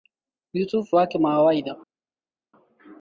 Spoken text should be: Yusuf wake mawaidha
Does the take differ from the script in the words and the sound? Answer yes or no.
no